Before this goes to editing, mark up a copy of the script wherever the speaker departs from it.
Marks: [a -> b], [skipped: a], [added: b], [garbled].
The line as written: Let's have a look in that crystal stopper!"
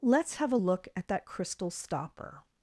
Let's have a look [in -> at] that crystal stopper!"